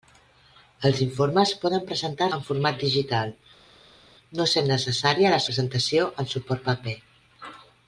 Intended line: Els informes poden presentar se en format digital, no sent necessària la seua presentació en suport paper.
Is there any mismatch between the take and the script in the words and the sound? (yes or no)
yes